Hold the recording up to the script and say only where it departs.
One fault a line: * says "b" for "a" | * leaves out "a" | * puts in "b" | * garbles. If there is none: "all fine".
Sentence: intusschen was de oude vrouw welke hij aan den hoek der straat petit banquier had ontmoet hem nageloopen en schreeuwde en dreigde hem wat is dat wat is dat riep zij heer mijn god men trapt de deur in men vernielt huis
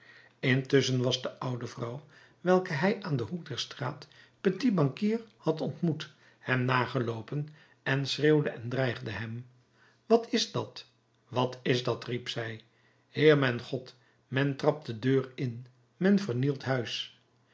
all fine